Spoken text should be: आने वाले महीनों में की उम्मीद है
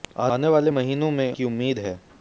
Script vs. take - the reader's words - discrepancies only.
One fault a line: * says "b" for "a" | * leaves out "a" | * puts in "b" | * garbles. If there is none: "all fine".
all fine